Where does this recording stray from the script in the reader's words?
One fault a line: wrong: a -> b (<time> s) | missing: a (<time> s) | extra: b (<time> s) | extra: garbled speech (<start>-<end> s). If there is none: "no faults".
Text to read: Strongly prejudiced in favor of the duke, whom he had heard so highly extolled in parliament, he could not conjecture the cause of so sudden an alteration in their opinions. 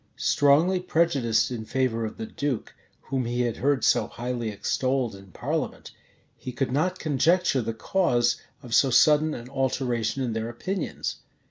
no faults